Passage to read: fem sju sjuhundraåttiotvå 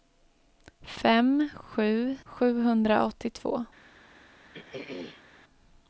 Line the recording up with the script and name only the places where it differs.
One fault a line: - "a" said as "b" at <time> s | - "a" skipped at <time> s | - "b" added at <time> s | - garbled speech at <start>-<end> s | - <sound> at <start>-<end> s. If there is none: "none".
- throat clearing at 4.5-5.2 s